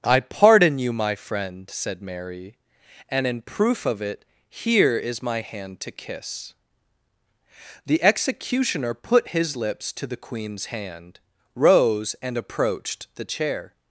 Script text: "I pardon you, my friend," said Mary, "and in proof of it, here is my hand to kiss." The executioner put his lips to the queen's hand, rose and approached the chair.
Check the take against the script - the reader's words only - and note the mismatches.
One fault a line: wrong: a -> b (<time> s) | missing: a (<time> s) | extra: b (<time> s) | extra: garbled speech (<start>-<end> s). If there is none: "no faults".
no faults